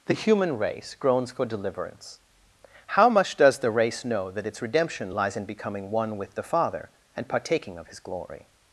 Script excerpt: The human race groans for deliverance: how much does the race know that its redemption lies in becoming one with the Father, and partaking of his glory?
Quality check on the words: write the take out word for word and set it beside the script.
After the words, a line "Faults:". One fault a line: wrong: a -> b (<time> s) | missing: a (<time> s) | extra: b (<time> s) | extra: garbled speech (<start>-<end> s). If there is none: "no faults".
The human race groans for deliverance: how much does the race know that its redemption lies in becoming one with the Father, and partaking of his glory?
Faults:
no faults